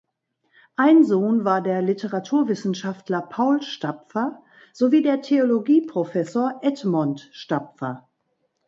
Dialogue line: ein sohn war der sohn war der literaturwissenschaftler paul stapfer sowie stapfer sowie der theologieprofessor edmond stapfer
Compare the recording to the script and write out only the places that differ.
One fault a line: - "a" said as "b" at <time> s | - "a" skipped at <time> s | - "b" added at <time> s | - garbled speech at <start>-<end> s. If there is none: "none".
- "sohn war der" skipped at 1.8 s
- "stapfer sowie" skipped at 5.0 s